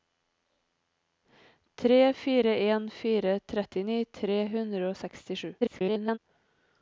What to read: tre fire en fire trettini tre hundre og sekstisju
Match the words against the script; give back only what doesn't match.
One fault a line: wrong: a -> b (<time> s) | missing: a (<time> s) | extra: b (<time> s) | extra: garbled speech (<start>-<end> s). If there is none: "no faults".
extra: garbled speech (5.6-6.2 s)